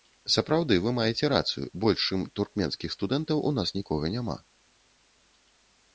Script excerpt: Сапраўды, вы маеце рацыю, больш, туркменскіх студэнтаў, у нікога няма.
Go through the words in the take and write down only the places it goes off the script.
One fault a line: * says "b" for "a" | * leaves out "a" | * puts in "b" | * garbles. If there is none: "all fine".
* puts in "чым"
* puts in "нас"